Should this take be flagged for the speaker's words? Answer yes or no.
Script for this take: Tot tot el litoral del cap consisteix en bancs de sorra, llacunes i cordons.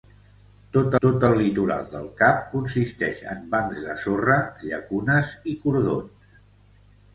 no